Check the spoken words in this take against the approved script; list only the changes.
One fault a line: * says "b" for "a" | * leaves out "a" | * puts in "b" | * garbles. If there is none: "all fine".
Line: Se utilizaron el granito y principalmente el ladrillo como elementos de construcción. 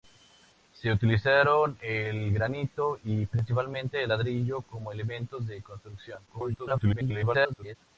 * garbles